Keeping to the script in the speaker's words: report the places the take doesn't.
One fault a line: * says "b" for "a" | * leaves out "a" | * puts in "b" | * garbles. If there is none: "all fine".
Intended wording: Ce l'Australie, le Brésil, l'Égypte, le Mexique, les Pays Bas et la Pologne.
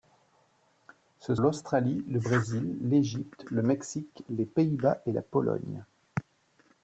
all fine